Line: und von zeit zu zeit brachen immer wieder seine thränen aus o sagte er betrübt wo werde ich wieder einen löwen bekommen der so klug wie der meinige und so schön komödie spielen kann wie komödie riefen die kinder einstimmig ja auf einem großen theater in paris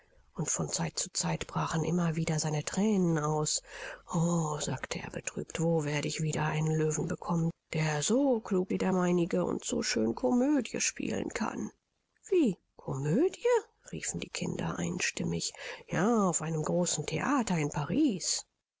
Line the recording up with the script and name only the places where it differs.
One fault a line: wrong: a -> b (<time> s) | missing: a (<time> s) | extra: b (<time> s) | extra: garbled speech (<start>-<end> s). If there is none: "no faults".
no faults